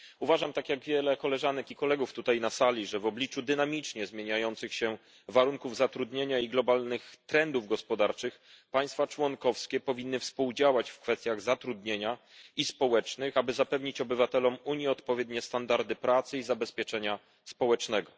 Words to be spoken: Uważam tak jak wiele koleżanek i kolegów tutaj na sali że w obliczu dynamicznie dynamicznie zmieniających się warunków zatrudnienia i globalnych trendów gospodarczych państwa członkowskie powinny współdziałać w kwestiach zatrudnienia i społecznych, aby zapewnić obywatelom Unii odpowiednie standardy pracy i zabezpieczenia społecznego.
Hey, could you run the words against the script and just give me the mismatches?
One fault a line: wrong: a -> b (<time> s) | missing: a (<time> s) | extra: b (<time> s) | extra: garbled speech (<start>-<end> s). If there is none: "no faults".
missing: dynamicznie (4.1 s)